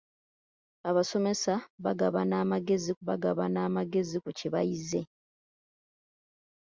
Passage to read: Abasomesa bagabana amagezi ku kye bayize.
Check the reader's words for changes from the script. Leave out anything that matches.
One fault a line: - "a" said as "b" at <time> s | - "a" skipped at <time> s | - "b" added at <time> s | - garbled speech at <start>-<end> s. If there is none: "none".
- "bagabana amagezi" added at 3.1 s